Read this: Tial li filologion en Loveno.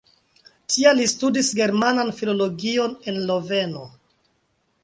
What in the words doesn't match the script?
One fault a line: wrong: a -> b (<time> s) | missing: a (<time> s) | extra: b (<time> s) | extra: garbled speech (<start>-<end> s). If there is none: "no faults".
extra: studis Germanan (1.1 s)